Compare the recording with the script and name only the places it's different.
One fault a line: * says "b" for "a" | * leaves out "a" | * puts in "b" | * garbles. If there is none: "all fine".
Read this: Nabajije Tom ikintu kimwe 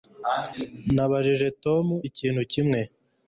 all fine